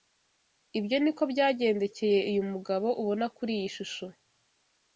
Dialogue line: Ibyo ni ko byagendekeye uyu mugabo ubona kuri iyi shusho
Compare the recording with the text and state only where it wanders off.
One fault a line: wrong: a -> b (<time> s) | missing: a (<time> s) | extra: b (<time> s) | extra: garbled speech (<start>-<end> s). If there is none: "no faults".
no faults